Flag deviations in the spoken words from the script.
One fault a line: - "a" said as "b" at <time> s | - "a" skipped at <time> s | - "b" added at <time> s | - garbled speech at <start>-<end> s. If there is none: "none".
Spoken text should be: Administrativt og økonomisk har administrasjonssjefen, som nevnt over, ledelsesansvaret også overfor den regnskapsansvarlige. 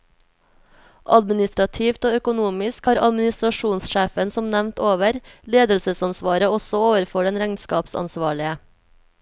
none